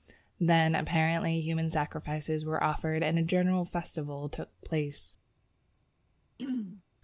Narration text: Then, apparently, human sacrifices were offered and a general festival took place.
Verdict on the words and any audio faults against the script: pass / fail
fail